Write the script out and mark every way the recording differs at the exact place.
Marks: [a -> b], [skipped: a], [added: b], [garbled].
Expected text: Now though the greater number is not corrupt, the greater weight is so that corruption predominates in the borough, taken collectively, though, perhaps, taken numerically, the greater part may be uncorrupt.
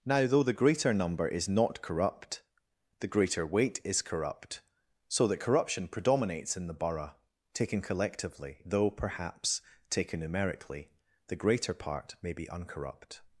Now though the greater number is not corrupt, the greater weight is [added: corrupt] so that corruption predominates in the borough, taken collectively, though, perhaps, taken numerically, the greater part may be uncorrupt.